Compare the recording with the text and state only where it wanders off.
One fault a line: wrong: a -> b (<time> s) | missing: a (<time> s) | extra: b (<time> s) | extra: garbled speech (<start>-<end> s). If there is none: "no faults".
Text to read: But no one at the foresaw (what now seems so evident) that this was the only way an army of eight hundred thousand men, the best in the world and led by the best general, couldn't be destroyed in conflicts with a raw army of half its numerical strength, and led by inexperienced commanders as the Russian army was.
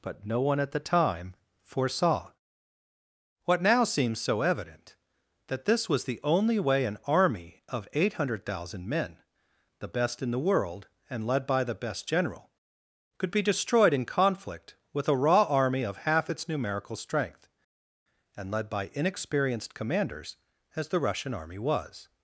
extra: time (0.8 s)
wrong: couldn't -> could (13.2 s)
wrong: conflicts -> conflict (14.1 s)